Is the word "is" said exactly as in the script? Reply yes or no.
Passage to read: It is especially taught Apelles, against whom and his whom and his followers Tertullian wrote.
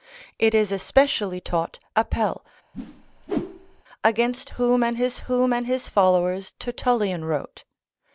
yes